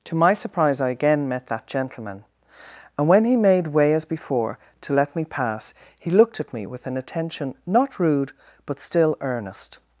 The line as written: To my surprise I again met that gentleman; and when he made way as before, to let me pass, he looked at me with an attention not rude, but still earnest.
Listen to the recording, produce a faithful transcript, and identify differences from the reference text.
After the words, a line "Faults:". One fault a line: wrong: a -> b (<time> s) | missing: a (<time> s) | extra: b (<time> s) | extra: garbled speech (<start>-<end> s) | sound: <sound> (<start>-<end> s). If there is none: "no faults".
To my surprise I again met that gentleman; and when he made way as before, to let me pass, he looked at me with an attention not rude, but still earnest.
Faults:
no faults